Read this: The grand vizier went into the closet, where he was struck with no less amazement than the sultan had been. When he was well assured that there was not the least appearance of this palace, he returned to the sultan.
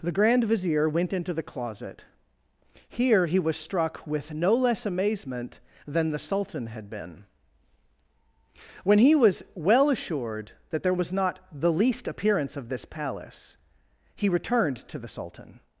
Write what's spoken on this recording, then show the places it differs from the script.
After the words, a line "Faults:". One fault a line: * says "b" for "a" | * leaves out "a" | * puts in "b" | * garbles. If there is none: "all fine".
The grand vizier went into the closet, here he was struck with no less amazement than the sultan had been. When he was well assured that there was not the least appearance of this palace, he returned to the sultan.
Faults:
* says "here" for "where"